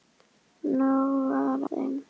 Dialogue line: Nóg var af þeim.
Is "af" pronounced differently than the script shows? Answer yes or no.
yes